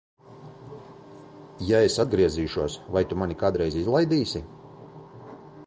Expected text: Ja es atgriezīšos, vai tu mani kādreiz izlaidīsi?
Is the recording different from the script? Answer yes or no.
no